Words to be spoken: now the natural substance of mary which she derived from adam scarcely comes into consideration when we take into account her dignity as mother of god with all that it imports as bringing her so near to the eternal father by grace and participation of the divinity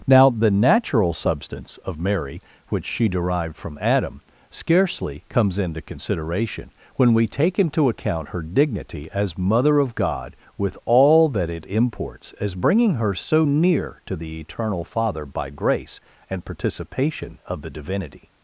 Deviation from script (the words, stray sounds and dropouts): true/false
false